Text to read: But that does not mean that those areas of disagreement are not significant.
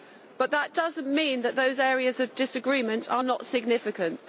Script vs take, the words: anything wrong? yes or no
no